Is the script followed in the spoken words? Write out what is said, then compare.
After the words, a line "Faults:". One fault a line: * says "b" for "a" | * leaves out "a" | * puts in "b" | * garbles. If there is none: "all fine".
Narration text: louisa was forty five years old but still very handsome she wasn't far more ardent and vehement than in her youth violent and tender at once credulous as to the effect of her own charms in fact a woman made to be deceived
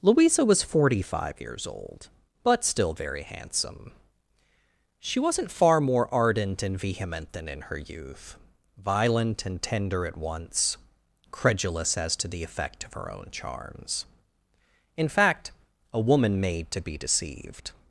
louisa was forty five years old but still very handsome she wasn't far more ardent and vehement than in her youth violent and tender at once credulous as to the effect of her own charms in fact a woman made to be deceived
Faults:
all fine